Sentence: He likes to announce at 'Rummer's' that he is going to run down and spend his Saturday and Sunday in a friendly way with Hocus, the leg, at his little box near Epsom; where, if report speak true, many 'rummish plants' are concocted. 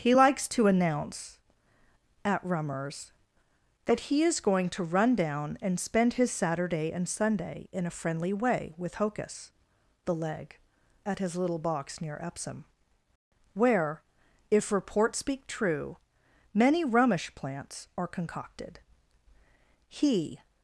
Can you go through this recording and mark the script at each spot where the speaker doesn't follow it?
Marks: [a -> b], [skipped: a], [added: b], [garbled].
He likes to announce at 'Rummer's' that he is going to run down and spend his Saturday and Sunday in a friendly way with Hocus, the leg, at his little box near Epsom; where, if report speak true, many 'rummish plants' are concocted. [added: He]